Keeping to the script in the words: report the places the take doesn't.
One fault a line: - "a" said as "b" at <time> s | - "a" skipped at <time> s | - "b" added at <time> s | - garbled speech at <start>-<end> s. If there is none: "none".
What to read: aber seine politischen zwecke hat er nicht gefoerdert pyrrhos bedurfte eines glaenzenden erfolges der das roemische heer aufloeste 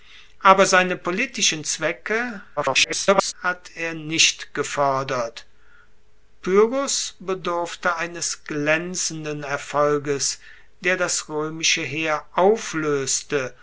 - garbled speech at 2.6-3.3 s